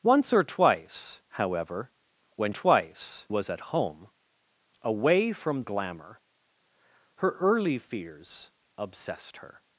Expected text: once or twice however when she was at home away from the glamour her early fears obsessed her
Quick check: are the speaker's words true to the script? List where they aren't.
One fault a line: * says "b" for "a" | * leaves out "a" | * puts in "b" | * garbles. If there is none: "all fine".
* says "twice" for "she"
* leaves out "the"